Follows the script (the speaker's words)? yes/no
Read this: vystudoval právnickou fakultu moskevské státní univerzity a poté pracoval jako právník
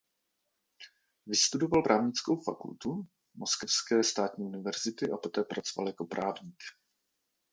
yes